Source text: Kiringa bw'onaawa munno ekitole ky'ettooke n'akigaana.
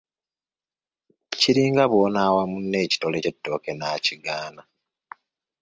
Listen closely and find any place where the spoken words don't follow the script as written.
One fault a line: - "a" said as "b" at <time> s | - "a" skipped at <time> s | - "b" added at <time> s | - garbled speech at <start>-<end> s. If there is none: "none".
none